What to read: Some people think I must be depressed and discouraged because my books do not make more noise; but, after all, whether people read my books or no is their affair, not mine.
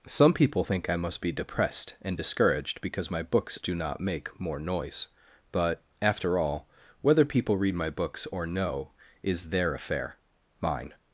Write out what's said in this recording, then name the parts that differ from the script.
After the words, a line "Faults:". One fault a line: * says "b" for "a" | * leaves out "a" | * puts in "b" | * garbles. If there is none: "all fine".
Some people think I must be depressed and discouraged because my books do not make more noise; but, after all, whether people read my books or no is their affair, mine.
Faults:
* leaves out "not"